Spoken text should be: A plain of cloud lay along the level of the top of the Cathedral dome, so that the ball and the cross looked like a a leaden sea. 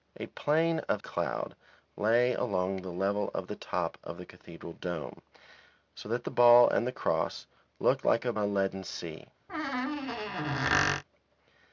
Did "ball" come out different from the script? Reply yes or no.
no